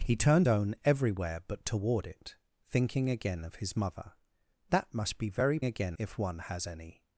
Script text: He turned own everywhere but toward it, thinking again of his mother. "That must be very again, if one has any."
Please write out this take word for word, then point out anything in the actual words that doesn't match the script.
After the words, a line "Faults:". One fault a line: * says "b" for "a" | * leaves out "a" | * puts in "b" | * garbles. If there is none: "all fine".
He turned own everywhere but toward it, thinking again of his mother. "That must be very again, if one has any."
Faults:
all fine